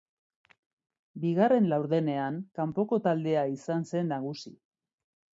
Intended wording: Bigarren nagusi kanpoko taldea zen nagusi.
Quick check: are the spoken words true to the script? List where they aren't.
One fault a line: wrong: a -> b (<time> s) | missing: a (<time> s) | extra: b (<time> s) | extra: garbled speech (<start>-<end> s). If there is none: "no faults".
wrong: nagusi -> laurdenean (1.7 s)
extra: izan (3.6 s)